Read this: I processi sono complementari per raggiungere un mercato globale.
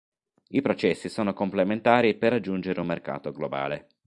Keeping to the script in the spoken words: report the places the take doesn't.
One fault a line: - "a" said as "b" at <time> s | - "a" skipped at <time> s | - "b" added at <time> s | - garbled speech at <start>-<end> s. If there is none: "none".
none